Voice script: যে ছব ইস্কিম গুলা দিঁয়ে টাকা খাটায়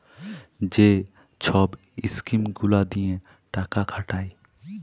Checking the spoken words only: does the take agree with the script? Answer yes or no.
yes